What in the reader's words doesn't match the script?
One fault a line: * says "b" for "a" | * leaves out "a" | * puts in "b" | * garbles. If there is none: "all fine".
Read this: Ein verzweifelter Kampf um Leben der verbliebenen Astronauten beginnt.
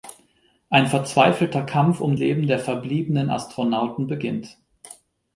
all fine